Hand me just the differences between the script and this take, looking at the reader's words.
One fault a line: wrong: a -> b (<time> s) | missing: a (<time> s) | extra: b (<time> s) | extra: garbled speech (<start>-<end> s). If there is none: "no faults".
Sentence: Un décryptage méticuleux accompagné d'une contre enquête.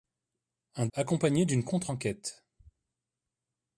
missing: décryptage méticuleux (0.9 s)